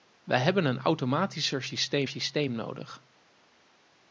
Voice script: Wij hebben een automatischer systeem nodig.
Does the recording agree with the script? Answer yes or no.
no